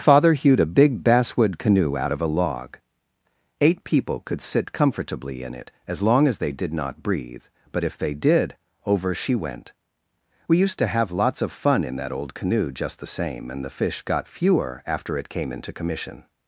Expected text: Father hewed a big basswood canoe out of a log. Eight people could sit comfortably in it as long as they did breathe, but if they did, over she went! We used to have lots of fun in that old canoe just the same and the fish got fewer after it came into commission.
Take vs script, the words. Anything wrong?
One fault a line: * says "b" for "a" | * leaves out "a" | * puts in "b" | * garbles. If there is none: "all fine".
* puts in "not"